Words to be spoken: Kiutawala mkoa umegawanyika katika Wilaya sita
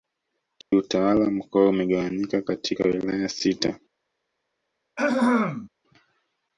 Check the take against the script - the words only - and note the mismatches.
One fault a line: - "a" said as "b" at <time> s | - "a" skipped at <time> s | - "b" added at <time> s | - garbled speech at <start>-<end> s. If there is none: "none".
none